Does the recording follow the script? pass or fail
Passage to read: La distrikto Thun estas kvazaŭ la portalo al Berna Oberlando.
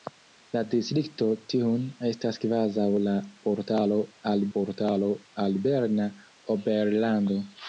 fail